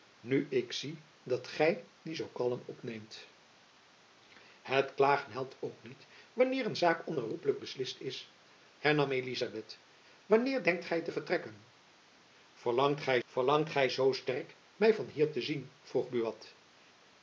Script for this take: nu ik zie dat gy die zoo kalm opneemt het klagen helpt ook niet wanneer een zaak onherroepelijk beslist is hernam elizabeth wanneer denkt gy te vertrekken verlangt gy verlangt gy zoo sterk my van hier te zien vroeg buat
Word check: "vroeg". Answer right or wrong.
right